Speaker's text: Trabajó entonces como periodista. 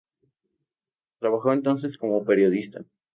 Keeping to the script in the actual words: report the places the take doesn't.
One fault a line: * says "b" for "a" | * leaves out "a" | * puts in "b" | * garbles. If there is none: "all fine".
all fine